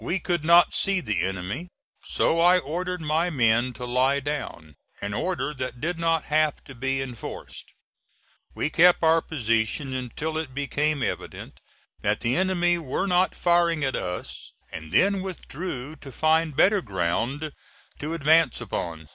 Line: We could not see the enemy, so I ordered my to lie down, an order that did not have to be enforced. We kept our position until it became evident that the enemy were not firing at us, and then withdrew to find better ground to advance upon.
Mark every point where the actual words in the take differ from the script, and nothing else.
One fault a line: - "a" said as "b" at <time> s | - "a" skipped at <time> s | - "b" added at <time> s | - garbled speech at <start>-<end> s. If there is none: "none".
- "men" added at 3.3 s